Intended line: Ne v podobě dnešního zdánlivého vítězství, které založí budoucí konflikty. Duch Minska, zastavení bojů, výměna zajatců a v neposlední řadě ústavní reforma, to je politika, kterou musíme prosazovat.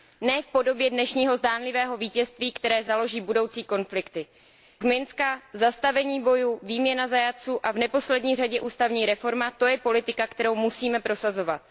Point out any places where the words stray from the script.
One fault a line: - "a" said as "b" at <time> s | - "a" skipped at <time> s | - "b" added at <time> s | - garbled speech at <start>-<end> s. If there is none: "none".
- "Duch" skipped at 4.2 s